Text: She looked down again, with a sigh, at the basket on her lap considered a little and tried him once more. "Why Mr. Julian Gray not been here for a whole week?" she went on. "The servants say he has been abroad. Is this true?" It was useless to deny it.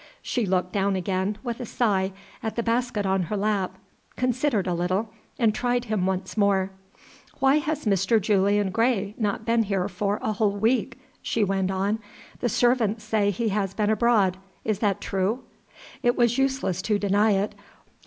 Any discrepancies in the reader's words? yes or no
yes